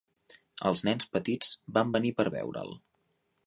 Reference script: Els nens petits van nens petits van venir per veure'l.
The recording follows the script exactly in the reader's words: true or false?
false